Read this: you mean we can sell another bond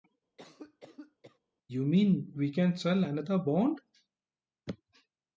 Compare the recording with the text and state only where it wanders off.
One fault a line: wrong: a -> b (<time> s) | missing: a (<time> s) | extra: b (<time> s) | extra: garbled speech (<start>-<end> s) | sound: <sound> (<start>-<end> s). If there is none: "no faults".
sound: cough (0.4-1.4 s)